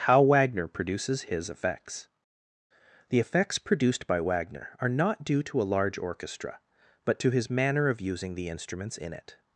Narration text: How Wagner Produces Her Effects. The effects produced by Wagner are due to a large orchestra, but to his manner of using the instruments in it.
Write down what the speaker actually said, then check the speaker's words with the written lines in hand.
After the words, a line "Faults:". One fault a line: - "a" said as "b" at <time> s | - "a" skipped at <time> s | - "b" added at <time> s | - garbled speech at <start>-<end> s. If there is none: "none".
How Wagner Produces His Effects. The effects produced by Wagner are not due to a large orchestra, but to his manner of using the instruments in it.
Faults:
- "Her" said as "His" at 1.3 s
- "not" added at 4.9 s